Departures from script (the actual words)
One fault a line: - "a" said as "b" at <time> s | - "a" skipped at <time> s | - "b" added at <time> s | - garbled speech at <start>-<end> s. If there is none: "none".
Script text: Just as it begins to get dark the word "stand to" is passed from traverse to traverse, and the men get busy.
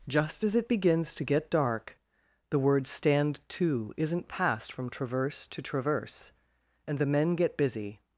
- "is" said as "isn't" at 4.0 s